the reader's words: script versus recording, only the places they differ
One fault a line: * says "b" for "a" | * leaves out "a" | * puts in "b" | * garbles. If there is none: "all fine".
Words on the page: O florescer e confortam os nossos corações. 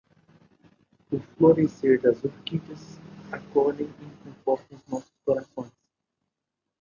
* puts in "das orquídeas acolhem"